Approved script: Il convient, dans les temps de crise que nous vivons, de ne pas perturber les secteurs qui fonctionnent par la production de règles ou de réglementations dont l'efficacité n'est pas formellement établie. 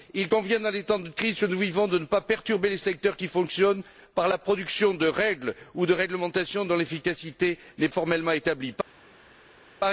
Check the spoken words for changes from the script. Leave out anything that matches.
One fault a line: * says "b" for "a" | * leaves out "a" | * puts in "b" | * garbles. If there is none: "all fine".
* leaves out "pas"